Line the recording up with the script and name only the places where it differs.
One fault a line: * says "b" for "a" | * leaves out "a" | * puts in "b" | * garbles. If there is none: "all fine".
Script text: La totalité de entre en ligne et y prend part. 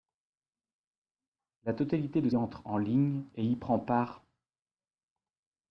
all fine